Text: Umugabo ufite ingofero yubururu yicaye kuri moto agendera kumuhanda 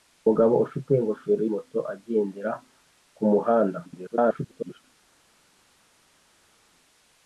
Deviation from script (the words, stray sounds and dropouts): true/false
true